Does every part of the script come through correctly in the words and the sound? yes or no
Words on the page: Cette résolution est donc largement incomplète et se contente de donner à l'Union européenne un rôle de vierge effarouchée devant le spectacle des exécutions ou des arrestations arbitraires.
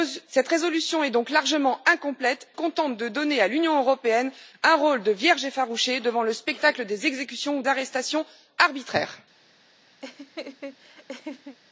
no